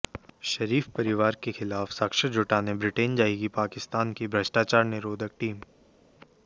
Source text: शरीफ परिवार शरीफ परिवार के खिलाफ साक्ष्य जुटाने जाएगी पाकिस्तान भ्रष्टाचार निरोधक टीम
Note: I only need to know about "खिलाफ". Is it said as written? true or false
true